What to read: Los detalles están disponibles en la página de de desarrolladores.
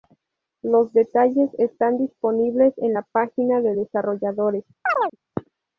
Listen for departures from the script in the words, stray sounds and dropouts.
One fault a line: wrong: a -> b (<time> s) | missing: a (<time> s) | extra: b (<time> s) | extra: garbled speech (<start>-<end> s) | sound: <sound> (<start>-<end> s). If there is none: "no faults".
missing: de (3.8 s)
sound: chirp (4.8-5.2 s)